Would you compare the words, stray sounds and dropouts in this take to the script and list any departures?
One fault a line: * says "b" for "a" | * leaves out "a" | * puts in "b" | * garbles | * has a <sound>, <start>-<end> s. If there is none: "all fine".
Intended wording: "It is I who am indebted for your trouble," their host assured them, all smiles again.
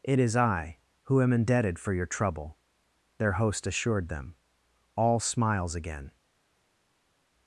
all fine